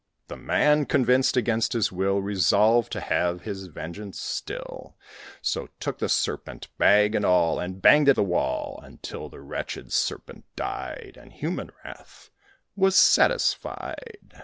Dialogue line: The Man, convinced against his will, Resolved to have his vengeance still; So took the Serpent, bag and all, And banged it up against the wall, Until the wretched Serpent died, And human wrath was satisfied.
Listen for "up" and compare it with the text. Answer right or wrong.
wrong